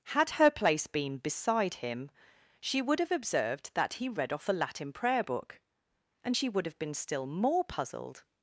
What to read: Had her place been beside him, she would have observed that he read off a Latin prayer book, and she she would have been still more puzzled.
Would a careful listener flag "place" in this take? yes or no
no